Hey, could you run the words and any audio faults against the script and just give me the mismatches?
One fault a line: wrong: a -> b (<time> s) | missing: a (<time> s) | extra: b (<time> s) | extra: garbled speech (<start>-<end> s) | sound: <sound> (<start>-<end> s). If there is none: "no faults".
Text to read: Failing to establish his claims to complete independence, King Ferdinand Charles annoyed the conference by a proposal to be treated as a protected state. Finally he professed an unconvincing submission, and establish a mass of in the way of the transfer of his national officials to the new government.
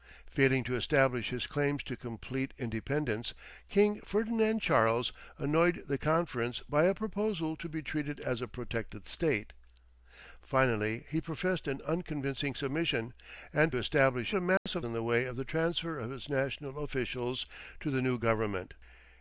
sound: dropout (14.6-14.7 s)